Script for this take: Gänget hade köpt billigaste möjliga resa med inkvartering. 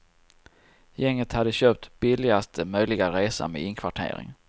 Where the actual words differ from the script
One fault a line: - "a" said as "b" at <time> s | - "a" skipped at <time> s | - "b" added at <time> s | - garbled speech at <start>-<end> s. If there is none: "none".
none